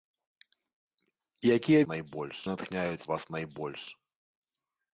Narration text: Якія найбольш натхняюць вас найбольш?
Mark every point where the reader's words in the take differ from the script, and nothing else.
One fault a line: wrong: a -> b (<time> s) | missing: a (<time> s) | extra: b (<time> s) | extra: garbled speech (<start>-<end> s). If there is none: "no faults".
no faults